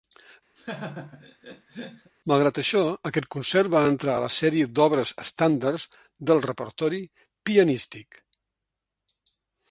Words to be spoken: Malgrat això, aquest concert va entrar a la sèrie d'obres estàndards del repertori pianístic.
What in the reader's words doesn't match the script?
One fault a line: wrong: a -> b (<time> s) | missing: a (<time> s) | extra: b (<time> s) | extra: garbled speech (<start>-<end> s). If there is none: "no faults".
no faults